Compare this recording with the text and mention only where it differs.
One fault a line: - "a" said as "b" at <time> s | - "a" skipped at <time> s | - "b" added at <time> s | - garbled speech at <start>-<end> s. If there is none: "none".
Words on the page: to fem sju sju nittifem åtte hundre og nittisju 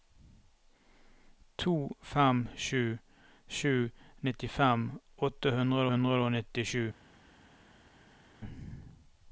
- "hundre" added at 5.9 s